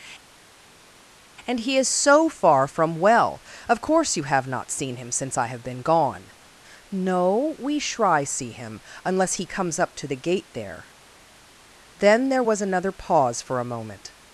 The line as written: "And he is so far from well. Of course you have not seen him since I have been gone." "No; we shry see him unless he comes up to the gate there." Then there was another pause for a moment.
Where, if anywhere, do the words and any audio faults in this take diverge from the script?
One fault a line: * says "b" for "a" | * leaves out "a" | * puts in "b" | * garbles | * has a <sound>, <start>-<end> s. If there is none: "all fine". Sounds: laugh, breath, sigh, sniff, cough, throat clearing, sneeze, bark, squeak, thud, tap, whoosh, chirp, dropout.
all fine